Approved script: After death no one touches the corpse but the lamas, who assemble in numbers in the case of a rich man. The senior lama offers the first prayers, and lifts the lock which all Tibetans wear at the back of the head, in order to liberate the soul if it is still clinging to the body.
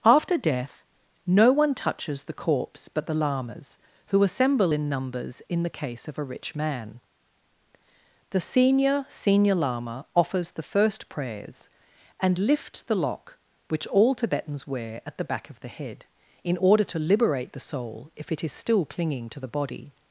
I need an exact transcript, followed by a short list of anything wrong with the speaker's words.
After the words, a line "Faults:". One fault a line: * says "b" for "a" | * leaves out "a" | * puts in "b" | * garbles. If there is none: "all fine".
After death no one touches the corpse but the lamas, who assemble in numbers in the case of a rich man. The senior senior lama offers the first prayers, and lifts the lock which all Tibetans wear at the back of the head, in order to liberate the soul if it is still clinging to the body.
Faults:
* puts in "senior"